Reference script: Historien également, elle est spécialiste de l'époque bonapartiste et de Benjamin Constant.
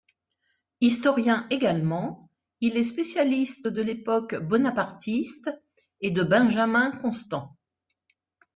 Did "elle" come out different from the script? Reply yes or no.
yes